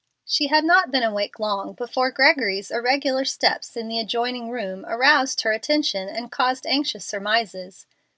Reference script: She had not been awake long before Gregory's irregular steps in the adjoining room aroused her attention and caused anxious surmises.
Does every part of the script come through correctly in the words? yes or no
yes